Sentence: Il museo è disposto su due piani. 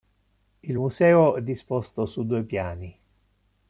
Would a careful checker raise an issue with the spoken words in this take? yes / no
no